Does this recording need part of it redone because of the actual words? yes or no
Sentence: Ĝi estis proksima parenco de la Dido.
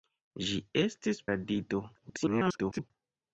yes